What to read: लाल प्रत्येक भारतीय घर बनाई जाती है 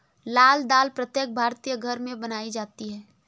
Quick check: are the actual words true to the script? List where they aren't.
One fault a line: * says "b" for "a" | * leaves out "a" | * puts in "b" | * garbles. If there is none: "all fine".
* puts in "दाल"
* puts in "में"